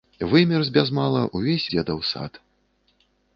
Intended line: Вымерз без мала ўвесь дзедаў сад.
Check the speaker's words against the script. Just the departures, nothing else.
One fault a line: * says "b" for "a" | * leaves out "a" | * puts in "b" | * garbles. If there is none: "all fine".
all fine